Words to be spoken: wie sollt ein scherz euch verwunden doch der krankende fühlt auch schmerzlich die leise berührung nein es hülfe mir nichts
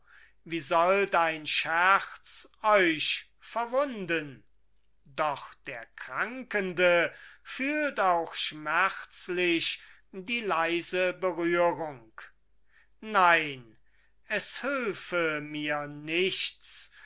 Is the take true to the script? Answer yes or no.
yes